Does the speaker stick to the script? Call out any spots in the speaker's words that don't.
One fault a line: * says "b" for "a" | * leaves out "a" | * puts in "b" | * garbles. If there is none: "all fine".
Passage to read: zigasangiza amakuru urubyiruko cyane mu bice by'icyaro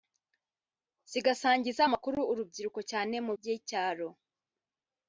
* leaves out "bice"